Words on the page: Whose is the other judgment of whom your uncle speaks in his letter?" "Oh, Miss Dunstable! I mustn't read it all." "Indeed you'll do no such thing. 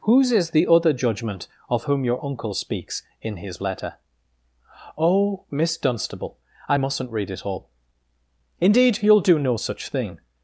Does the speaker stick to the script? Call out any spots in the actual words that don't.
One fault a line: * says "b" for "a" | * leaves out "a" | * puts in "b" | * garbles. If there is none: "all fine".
all fine